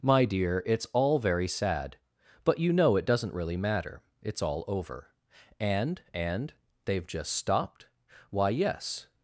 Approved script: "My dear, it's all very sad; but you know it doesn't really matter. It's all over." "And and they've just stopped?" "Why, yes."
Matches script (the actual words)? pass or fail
pass